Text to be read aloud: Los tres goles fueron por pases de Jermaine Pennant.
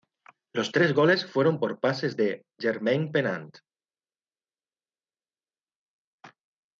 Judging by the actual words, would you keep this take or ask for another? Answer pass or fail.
pass